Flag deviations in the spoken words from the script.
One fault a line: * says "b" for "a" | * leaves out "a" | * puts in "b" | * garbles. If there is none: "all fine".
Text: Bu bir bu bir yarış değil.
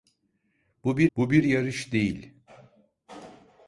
all fine